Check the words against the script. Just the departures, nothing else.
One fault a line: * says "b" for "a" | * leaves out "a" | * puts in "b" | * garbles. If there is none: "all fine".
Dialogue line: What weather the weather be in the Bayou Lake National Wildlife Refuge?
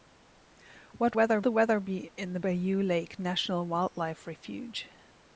all fine